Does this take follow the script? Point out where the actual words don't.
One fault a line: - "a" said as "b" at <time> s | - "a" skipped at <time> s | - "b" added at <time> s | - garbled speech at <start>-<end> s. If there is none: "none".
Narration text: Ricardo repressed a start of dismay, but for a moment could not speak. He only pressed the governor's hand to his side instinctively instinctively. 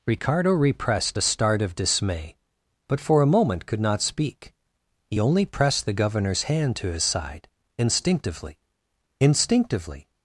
none